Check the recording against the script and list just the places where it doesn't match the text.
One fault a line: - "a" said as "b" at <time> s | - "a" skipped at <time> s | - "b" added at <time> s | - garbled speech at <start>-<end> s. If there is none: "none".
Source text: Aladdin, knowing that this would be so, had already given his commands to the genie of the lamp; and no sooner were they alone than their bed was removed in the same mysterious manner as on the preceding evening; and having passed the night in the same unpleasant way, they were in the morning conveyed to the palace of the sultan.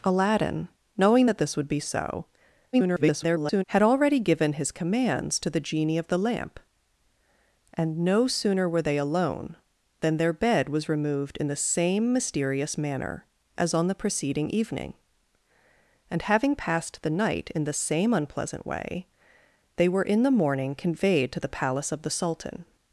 - garbled speech at 2.7-3.6 s